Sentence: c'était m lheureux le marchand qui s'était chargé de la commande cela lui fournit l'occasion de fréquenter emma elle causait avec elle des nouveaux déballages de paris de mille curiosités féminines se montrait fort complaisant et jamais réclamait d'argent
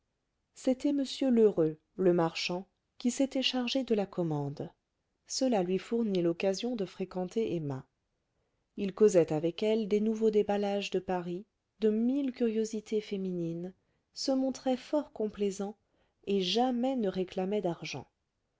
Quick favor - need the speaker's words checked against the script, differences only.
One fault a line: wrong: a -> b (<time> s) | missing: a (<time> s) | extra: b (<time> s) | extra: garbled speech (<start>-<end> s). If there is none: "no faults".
wrong: elle -> il (8.8 s)
extra: ne (17.0 s)